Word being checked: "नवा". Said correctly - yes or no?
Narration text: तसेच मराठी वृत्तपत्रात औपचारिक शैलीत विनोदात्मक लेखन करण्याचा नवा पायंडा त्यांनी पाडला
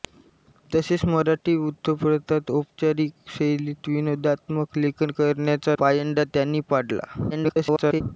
no